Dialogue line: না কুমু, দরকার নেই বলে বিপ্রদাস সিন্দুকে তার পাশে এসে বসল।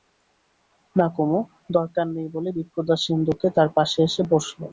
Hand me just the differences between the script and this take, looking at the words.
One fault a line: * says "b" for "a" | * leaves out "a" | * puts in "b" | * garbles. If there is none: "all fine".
all fine